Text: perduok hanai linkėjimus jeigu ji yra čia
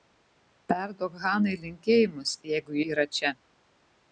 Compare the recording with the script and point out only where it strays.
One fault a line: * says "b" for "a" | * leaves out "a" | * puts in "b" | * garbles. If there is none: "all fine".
* leaves out "ji"